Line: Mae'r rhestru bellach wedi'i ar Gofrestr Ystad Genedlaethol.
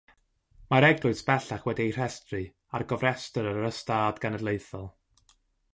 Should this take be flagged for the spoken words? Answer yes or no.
yes